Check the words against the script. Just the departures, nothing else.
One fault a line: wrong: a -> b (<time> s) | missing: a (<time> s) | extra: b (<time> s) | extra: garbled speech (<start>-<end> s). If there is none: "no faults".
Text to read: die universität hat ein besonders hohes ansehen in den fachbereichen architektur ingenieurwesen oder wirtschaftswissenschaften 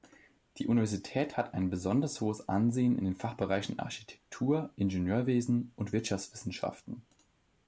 wrong: oder -> und (5.7 s)